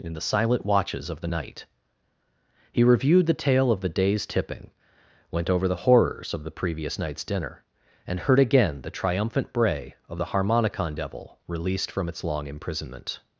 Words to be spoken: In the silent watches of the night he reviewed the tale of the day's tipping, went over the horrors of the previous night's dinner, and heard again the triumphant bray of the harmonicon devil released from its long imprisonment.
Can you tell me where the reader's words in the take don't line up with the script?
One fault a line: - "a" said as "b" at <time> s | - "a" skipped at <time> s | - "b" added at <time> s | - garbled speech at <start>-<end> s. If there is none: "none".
none